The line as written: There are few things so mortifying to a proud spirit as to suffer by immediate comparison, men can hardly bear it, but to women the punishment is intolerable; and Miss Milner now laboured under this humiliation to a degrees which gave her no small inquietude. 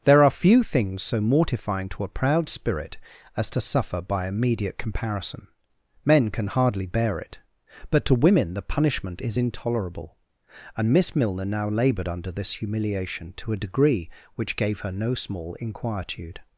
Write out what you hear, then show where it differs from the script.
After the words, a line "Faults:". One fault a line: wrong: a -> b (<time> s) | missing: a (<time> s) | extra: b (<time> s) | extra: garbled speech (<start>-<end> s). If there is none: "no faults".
There are few things so mortifying to a proud spirit as to suffer by immediate comparison, men can hardly bear it, but to women the punishment is intolerable; and Miss Milner now laboured under this humiliation to a degree which gave her no small inquietude.
Faults:
wrong: degrees -> degree (13.6 s)